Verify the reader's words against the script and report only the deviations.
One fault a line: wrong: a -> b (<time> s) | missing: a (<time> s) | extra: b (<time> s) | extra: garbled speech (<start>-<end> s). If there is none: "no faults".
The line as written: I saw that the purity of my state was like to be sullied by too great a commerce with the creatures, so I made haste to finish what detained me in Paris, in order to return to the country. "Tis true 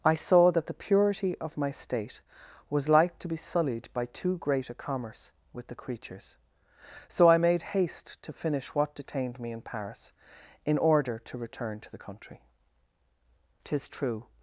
no faults